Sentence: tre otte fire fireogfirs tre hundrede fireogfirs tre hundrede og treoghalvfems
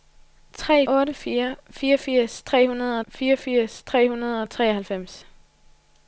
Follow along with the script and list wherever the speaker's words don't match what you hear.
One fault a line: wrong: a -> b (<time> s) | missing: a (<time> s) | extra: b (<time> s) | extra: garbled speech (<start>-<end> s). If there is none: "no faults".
no faults